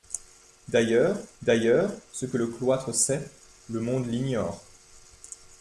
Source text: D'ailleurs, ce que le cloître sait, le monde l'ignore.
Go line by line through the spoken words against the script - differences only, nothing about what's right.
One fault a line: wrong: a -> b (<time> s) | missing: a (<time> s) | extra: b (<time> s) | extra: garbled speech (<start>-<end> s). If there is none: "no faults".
extra: d'ailleurs (1.4 s)